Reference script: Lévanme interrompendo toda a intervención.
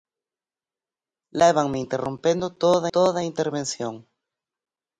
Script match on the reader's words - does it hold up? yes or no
no